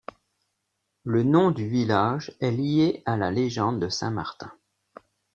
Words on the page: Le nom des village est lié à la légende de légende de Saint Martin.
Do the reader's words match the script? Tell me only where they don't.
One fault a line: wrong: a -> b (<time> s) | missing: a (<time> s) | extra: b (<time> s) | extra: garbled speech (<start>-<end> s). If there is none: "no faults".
wrong: des -> du (1.5 s)
missing: légende de (3.9 s)